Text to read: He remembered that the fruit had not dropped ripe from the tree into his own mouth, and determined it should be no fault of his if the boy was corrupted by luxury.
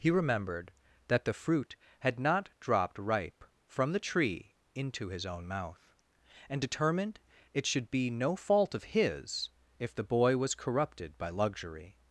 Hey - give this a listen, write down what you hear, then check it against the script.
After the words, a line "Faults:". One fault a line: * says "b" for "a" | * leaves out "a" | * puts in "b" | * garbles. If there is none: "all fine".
He remembered that the fruit had not dropped ripe from the tree into his own mouth, and determined it should be no fault of his if the boy was corrupted by luxury.
Faults:
all fine